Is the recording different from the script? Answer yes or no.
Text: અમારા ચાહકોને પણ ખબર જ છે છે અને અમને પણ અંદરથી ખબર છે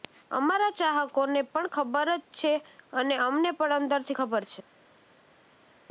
yes